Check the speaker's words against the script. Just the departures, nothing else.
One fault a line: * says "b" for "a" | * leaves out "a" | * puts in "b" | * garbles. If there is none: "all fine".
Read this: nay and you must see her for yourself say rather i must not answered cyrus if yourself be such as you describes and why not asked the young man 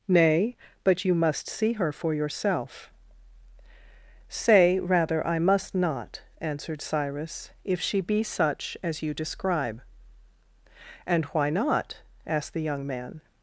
* says "but" for "and"
* says "she" for "yourself"
* says "describe" for "describes"